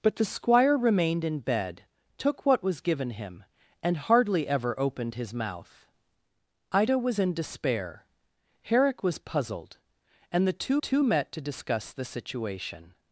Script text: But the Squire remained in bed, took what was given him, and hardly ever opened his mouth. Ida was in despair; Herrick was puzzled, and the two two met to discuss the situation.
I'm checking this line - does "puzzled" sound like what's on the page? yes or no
yes